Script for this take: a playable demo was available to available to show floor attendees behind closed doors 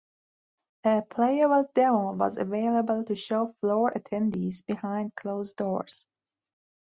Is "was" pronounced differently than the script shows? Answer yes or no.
no